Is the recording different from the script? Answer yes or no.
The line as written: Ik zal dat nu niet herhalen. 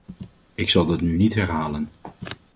no